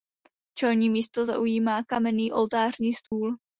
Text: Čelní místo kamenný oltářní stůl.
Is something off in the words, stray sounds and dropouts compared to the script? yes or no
yes